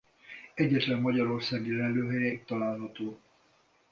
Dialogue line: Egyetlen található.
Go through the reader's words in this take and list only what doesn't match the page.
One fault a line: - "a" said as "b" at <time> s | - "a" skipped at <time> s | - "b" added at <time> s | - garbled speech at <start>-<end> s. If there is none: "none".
- "magyarországi lelőhelye itt" added at 1.0 s